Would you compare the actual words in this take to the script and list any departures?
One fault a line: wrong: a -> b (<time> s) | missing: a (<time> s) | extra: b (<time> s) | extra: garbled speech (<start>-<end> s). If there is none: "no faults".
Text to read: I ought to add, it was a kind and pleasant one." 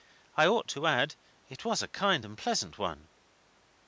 no faults